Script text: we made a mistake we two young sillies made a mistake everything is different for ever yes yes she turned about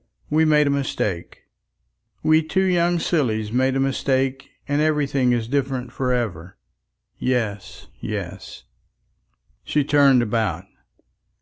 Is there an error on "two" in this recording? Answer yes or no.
no